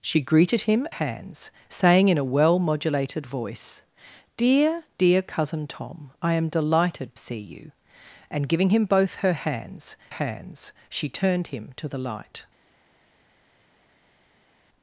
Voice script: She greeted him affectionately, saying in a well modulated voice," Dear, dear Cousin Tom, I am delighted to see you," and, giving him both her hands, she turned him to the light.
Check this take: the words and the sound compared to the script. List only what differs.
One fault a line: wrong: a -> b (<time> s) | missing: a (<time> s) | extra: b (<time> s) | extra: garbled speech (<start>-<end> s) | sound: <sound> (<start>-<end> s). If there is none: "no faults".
wrong: affectionately -> hands (0.9 s)
missing: to (7.1 s)
extra: hands (10.1 s)